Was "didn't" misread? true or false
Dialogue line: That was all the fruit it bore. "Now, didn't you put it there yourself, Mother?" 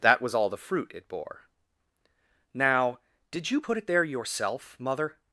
true